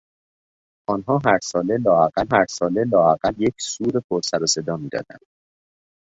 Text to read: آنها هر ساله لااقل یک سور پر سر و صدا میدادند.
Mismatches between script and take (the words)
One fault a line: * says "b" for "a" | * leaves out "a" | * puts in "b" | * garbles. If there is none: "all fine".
* puts in "هر ساله لااقل"